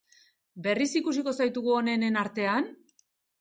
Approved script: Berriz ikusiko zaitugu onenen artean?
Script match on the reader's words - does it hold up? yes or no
yes